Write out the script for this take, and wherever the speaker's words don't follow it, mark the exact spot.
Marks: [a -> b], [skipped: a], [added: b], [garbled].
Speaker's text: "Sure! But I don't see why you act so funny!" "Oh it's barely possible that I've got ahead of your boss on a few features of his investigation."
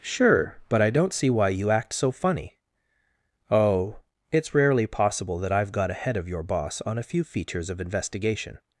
"Sure! But I don't see why you act so funny!" "Oh it's [barely -> rarely] possible that I've got ahead of your boss on a few features of [skipped: his] investigation."